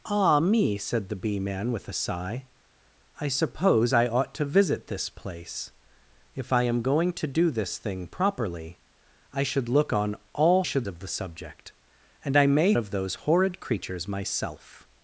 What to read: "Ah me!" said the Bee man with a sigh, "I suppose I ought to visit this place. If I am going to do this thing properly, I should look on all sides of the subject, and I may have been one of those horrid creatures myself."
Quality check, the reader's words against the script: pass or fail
fail